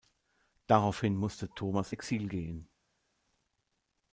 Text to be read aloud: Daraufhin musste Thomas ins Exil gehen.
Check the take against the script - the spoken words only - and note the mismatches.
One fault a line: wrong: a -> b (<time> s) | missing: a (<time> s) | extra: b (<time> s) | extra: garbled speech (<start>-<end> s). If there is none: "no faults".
missing: ins (1.9 s)